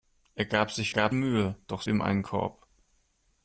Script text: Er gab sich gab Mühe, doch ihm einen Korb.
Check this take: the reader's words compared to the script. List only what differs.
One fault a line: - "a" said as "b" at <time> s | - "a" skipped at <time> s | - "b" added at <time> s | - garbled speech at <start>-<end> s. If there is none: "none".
none